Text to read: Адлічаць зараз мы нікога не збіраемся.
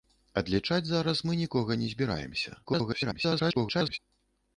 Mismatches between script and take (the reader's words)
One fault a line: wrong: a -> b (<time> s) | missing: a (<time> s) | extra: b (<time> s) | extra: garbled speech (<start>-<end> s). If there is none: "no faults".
extra: garbled speech (2.6-4.0 s)